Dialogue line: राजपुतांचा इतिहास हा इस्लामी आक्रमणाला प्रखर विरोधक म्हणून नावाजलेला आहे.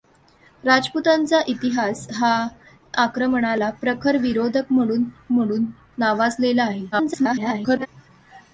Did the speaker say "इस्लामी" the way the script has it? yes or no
no